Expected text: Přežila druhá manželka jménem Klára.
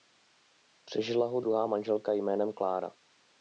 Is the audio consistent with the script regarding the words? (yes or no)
no